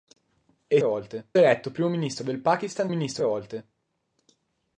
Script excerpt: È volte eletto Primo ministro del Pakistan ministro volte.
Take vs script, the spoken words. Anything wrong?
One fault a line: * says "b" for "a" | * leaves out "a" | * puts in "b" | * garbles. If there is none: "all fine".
all fine